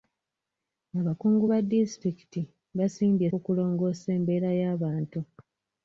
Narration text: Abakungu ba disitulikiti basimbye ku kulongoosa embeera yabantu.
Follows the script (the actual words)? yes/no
yes